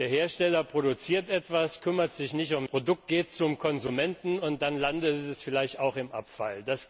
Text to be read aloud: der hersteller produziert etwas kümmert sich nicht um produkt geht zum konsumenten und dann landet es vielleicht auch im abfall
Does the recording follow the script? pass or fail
pass